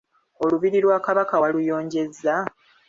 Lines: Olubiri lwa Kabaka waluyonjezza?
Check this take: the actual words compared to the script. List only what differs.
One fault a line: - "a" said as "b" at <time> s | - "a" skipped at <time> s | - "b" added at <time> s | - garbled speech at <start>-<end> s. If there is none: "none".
none